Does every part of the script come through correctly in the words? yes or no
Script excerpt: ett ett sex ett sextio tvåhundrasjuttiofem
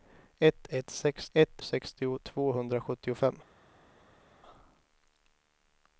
yes